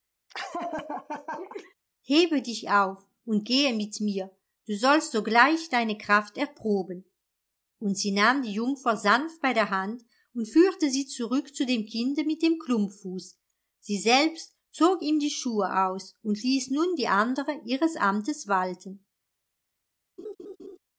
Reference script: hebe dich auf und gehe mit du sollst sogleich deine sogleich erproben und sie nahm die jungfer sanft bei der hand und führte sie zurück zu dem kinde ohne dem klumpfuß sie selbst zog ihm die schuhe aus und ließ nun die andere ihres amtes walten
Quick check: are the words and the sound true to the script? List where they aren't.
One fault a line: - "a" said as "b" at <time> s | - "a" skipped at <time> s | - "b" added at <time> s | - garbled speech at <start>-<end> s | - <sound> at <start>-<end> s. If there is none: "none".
- laugh at 0.3-1.7 s
- "mir" added at 4.0 s
- "sogleich" said as "kraft" at 6.0 s
- "ohne" said as "mit" at 12.2 s
- laugh at 20.2-20.8 s